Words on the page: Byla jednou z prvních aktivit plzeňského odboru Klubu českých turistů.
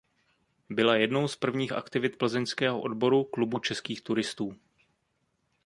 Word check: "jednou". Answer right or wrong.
right